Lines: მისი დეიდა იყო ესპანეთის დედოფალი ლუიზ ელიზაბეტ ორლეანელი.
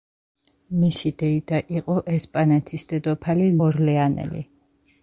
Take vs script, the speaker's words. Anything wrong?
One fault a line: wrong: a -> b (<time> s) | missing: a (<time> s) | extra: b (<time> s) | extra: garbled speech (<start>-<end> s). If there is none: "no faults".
missing: ლუიზ ელიზაბეტ (3.5 s)